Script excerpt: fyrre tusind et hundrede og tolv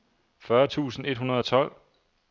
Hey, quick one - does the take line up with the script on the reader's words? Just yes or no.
yes